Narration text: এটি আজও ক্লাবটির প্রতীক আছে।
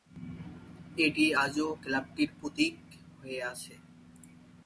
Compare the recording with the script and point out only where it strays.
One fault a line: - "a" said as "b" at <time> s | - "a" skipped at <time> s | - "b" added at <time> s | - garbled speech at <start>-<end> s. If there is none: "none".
- "হয়ে" added at 3.2 s